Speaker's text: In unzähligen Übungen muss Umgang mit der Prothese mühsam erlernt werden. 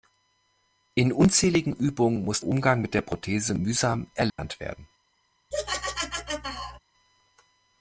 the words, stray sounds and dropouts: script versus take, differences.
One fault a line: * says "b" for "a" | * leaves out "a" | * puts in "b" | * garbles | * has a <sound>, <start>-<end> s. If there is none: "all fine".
* has a dropout, 4.3-4.4 s
* has a laugh, 5.5-6.8 s